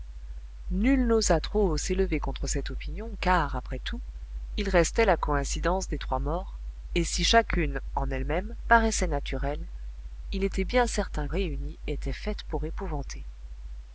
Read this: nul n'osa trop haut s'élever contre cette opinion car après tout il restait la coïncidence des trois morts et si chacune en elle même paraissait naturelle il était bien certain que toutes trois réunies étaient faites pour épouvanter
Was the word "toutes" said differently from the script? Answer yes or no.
yes